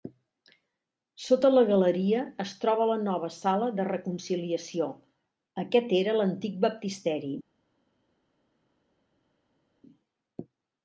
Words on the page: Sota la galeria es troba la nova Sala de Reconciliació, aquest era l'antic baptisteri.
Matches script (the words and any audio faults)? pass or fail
pass